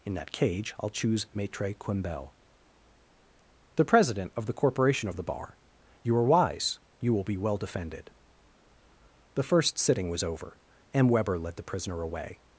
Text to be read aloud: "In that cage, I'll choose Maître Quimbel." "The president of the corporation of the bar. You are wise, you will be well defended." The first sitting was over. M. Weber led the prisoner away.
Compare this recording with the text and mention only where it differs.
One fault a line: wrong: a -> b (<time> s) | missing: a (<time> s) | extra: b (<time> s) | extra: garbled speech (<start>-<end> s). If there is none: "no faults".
no faults